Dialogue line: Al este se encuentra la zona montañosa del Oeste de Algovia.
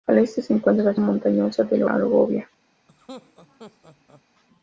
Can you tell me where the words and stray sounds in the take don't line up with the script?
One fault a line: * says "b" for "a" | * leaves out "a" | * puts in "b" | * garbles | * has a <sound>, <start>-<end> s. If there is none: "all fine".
* leaves out "zona"
* leaves out "Oeste de"
* has a laugh, 2.9-4.2 s